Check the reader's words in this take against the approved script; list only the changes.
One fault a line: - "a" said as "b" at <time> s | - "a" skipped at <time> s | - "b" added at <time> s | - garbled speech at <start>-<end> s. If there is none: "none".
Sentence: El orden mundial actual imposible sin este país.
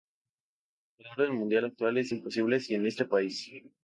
- "es" added at 2.0 s